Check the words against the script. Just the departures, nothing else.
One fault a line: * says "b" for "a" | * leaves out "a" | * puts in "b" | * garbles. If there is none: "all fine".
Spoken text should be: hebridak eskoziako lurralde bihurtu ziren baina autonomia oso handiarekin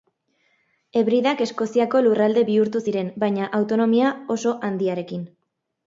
all fine